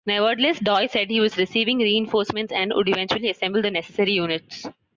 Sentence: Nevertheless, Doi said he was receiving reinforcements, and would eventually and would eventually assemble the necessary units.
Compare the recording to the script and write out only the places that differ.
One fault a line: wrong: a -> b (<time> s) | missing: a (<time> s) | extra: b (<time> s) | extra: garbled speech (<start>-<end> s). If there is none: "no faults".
missing: and would eventually (3.3 s)